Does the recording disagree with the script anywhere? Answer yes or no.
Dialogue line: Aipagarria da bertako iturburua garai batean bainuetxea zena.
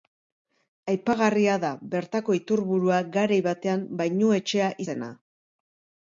no